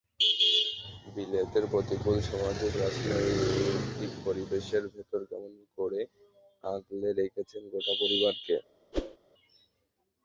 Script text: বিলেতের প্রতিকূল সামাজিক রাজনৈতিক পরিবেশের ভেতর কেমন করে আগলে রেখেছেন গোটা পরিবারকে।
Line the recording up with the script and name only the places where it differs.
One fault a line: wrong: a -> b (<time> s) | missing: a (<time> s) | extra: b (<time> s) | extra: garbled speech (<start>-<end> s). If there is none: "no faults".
no faults